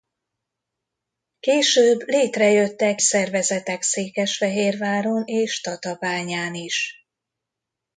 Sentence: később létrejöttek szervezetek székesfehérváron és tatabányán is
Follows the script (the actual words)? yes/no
yes